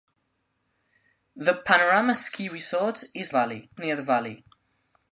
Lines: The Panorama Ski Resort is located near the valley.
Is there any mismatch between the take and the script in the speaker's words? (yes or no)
yes